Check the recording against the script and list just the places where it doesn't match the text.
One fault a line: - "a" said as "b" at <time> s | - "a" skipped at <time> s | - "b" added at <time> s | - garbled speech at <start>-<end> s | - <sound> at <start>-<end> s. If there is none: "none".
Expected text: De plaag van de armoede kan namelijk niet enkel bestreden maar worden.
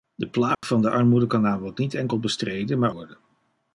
- dropout at 0.5-0.6 s